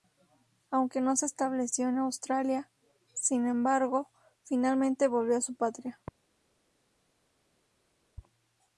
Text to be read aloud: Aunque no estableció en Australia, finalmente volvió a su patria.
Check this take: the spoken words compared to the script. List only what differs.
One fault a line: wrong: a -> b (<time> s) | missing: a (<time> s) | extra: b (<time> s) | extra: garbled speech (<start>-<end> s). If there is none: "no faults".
extra: se (1.1 s)
extra: sin embargo (3.1 s)